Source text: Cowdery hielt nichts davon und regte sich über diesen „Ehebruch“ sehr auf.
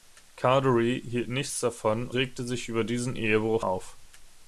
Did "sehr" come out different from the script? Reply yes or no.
yes